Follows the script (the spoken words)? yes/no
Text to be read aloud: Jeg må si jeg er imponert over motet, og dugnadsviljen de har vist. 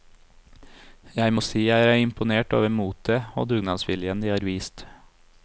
yes